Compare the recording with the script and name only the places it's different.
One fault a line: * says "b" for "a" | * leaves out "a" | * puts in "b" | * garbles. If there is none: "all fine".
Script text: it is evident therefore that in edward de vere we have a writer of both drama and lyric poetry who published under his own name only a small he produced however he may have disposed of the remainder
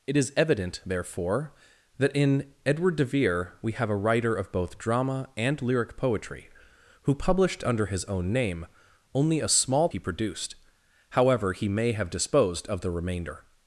all fine